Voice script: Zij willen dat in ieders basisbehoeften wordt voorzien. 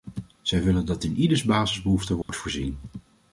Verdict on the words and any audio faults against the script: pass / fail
fail